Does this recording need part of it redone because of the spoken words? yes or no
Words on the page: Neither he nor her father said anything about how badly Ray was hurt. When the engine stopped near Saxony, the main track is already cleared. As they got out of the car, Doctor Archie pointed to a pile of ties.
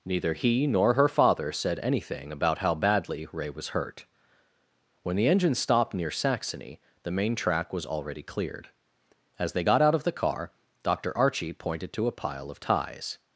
yes